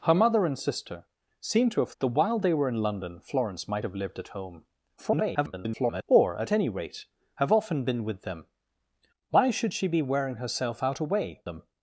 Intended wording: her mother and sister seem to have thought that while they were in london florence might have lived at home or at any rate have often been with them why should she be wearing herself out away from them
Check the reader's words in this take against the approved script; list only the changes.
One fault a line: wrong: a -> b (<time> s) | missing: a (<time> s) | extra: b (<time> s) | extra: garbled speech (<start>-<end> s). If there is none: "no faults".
missing: thought (1.9 s)
extra: garbled speech (5.0-6.0 s)
missing: from (11.4 s)